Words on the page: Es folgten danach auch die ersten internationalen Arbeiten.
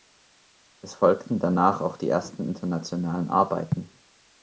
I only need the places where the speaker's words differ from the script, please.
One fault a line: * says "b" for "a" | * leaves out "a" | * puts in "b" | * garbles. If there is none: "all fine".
all fine